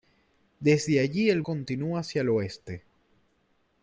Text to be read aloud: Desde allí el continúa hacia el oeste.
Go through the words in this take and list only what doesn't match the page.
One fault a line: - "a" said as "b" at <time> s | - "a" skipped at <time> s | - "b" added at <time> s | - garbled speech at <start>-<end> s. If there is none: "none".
none